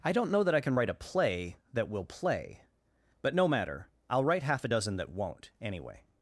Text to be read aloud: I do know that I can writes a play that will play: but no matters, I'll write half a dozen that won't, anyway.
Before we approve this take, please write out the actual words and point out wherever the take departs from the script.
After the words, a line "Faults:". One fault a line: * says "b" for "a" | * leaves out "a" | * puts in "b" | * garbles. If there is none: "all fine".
I don't know that I can write a play that will play: but no matter, I'll write half a dozen that won't, anyway.
Faults:
* says "don't" for "do"
* says "write" for "writes"
* says "matter" for "matters"